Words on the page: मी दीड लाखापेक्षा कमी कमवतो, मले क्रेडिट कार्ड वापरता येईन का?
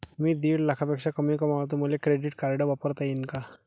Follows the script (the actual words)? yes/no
yes